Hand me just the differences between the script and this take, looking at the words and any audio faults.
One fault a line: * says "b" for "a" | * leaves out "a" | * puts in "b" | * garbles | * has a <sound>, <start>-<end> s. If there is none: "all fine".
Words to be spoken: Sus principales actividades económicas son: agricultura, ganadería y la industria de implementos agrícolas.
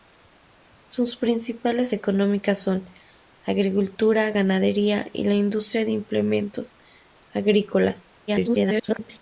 * leaves out "actividades"
* garbles